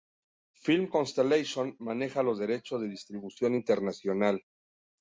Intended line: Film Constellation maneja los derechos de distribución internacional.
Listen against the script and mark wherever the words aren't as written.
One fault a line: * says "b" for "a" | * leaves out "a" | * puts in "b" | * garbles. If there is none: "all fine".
all fine